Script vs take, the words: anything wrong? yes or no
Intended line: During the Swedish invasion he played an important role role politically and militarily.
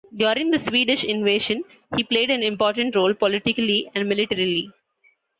yes